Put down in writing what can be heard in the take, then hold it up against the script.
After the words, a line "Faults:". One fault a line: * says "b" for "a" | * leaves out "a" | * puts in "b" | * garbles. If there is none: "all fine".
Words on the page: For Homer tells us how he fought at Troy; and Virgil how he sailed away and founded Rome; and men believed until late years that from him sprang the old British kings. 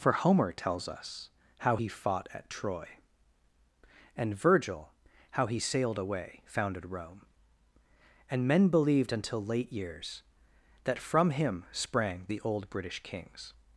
For Homer tells us how he fought at Troy; and Virgil how he sailed away founded Rome; and men believed until late years that from him sprang the old British kings.
Faults:
* leaves out "and"